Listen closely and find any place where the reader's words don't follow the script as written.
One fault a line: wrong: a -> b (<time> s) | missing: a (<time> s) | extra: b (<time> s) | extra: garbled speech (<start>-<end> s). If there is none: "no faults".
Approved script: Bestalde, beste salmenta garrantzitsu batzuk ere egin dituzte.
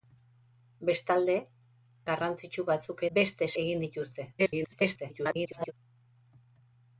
missing: beste salmenta (1.4 s)
wrong: ere -> beste (3.2 s)
extra: garbled speech (4.4-5.7 s)